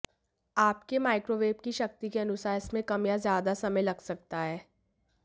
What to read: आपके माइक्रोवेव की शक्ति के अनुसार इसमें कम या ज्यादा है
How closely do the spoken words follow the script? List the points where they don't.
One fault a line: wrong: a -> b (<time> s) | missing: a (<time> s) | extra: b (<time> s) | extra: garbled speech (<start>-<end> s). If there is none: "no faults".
extra: समय लग सकता (3.5 s)